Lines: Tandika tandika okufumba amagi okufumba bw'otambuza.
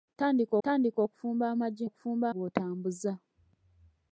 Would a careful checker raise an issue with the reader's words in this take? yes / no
no